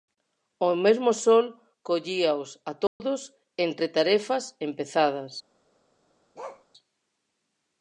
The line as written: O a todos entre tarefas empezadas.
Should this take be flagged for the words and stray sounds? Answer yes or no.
yes